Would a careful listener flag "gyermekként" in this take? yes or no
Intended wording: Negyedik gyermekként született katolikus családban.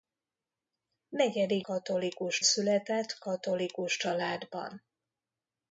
yes